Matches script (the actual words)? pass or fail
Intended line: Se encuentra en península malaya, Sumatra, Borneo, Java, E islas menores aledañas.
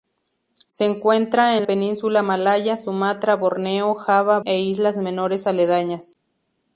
pass